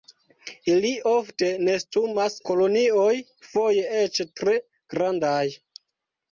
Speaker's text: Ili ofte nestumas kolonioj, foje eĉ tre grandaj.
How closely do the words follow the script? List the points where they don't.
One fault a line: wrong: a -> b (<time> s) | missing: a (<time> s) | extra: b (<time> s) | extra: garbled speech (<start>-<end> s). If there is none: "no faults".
no faults